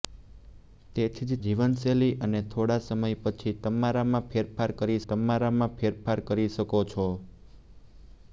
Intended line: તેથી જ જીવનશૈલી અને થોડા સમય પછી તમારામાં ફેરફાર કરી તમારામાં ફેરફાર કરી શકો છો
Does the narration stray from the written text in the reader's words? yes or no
no